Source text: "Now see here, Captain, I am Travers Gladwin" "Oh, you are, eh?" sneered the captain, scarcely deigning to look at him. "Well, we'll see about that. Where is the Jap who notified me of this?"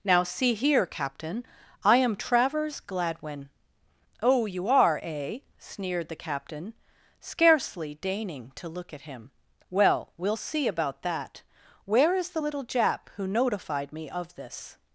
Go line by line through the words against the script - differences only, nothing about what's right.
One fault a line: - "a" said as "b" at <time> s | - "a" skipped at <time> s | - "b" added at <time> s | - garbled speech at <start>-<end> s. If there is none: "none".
- "little" added at 12.4 s